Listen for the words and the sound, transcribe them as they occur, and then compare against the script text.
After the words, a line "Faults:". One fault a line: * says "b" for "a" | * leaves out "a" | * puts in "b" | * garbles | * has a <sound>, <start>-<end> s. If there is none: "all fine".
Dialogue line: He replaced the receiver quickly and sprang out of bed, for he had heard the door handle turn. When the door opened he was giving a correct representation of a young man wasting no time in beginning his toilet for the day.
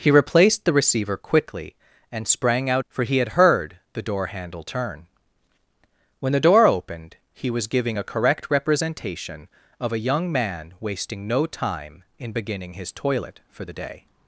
He replaced the receiver quickly and sprang out for he had heard the door handle turn. When the door opened he was giving a correct representation of a young man wasting no time in beginning his toilet for the day.
Faults:
* leaves out "of bed"